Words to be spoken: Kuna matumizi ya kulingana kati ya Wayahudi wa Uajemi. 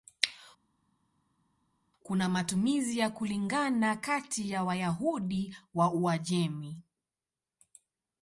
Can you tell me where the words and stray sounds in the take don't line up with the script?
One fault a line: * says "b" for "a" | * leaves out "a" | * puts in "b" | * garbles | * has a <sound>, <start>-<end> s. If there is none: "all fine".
all fine